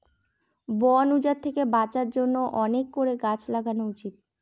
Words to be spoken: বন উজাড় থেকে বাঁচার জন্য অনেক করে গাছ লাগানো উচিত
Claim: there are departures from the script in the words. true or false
false